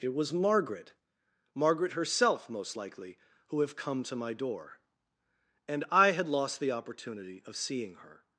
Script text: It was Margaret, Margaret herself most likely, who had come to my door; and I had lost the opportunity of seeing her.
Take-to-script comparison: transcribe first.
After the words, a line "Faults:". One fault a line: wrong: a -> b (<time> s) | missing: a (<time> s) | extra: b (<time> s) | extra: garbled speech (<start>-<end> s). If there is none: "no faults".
It was Margaret, Margaret herself most likely, who have come to my door; and I had lost the opportunity of seeing her.
Faults:
wrong: had -> have (3.6 s)